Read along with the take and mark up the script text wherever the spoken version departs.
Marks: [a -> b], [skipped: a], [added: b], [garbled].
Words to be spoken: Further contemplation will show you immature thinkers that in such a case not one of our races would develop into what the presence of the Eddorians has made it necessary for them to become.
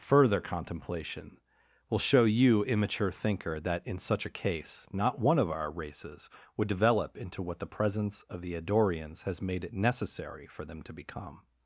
Further contemplation will show you immature [thinkers -> thinker] that in such a case not one of our races would develop into what the presence of the Eddorians has made it necessary for them to become.